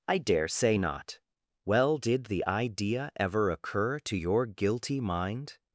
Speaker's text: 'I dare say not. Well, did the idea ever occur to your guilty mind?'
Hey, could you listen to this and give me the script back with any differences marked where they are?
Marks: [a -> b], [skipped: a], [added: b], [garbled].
'I dare say not. Well, did the idea ever occur to your guilty mind?'